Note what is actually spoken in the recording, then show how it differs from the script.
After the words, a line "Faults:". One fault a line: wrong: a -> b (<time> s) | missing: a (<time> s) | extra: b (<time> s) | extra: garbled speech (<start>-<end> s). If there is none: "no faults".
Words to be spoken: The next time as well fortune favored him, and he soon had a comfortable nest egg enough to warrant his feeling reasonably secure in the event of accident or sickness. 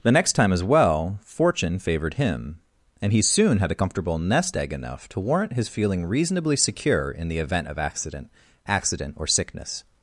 The next time as well fortune favored him, and he soon had a comfortable nest egg enough to warrant his feeling reasonably secure in the event of accident accident or sickness.
Faults:
extra: accident (8.6 s)